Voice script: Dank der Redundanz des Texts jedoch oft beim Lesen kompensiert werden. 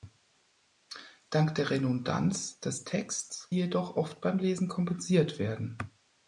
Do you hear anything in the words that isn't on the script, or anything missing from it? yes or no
no